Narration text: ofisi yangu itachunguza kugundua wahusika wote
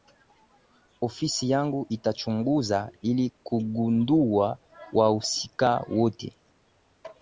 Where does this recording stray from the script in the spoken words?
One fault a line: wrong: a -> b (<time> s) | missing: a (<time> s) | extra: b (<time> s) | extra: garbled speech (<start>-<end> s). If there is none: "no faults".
extra: ili (3.0 s)